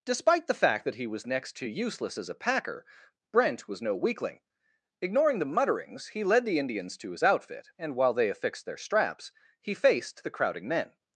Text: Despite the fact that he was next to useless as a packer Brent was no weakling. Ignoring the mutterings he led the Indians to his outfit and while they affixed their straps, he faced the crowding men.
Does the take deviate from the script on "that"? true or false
false